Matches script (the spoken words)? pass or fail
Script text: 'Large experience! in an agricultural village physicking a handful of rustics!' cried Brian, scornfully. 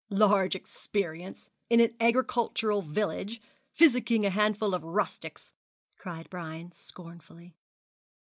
pass